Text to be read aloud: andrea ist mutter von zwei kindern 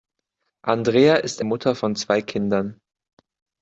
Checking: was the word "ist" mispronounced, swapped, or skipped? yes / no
no